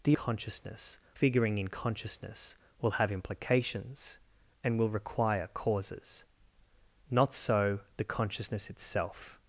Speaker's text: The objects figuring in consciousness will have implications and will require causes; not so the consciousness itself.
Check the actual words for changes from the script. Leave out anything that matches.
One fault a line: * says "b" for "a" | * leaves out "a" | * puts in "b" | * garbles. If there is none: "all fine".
* says "consciousness" for "objects"